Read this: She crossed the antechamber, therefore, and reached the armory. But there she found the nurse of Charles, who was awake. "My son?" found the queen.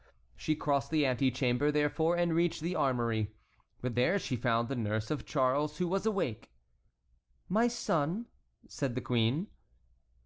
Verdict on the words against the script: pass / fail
fail